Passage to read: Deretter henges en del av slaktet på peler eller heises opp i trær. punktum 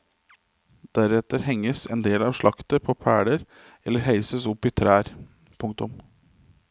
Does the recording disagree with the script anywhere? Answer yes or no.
no